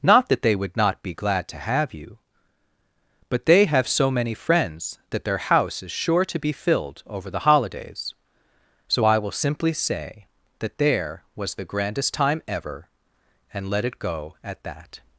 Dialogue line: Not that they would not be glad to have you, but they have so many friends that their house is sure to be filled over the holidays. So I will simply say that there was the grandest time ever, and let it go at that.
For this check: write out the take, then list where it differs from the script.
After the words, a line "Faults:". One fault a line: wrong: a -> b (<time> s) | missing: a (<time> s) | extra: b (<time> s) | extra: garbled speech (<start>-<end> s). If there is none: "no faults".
Not that they would not be glad to have you, but they have so many friends that their house is sure to be filled over the holidays. So I will simply say that there was the grandest time ever, and let it go at that.
Faults:
no faults